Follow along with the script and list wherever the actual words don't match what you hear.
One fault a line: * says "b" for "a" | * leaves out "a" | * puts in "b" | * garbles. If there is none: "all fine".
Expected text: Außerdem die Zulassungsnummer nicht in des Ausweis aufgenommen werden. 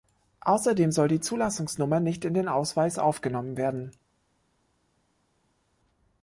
* puts in "soll"
* says "den" for "des"